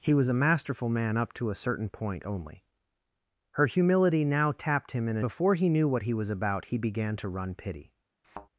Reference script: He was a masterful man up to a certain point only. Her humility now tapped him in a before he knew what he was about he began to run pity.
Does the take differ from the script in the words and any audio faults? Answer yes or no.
yes